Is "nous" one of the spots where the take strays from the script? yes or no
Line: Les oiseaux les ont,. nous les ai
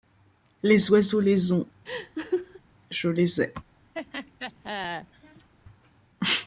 yes